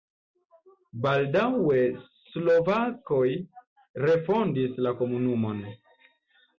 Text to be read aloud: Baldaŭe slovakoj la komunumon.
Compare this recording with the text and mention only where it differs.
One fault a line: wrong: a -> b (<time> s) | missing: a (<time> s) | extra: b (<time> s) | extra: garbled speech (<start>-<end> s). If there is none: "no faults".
extra: refondis (4.1 s)